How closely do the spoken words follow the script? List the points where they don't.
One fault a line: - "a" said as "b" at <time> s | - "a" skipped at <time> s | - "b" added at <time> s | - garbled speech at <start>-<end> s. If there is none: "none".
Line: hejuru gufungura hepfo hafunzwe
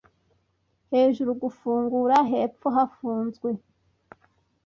none